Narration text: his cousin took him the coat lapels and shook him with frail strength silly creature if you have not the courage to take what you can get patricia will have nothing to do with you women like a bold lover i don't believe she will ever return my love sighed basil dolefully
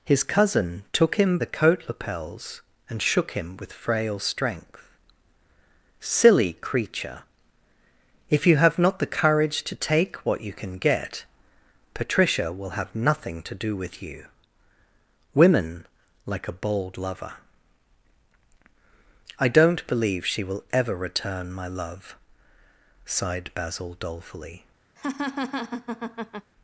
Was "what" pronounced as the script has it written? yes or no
yes